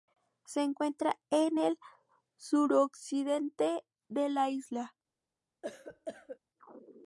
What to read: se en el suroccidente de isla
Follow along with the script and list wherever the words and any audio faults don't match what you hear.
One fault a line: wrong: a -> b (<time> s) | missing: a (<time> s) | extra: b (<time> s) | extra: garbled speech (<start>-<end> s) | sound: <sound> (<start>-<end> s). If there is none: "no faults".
extra: encuentra (0.6 s)
extra: la (4.3 s)
sound: cough (5.6-6.4 s)